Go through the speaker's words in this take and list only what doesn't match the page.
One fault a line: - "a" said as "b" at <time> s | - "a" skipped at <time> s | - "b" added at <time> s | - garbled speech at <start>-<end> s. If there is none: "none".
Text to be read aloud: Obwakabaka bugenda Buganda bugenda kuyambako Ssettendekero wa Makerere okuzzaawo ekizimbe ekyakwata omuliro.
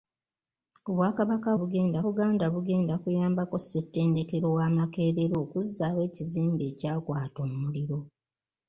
none